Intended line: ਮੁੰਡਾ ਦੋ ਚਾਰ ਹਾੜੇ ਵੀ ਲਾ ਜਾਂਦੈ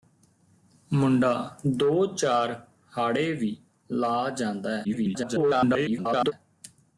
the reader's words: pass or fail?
fail